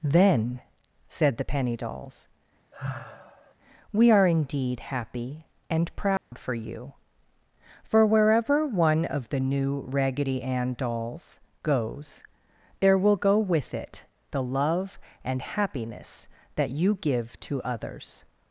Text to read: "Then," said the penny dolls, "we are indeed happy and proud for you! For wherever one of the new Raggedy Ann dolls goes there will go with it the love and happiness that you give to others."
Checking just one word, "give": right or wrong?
right